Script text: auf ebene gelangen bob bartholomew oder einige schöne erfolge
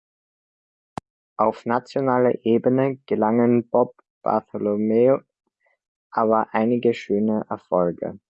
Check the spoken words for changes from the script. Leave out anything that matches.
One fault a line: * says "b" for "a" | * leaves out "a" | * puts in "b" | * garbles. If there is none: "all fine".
* puts in "nationaler"
* says "aber" for "oder"